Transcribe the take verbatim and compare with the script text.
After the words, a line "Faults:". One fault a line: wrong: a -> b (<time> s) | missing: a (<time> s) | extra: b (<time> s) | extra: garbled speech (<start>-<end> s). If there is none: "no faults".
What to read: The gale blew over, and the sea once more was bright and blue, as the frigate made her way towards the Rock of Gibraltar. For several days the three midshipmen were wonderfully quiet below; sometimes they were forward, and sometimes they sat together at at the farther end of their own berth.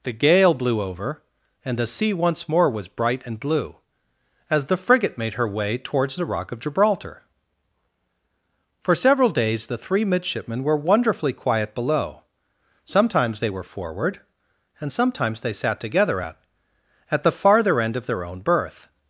The gale blew over, and the sea once more was bright and blue, as the frigate made her way towards the Rock of Gibraltar. For several days the three midshipmen were wonderfully quiet below; sometimes they were forward, and sometimes they sat together at at the farther end of their own berth.
Faults:
no faults